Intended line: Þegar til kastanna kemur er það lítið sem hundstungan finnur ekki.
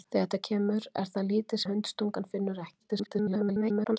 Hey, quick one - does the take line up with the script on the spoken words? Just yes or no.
no